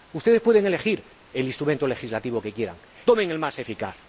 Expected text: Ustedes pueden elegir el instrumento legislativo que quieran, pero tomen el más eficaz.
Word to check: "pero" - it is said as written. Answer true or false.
false